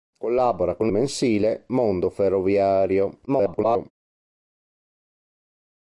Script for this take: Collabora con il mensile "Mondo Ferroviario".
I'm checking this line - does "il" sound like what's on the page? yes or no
no